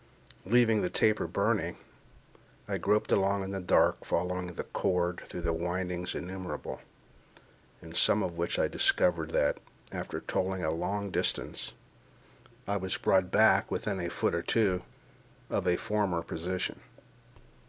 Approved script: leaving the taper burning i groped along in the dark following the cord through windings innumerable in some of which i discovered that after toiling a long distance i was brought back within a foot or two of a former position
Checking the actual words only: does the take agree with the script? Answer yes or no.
yes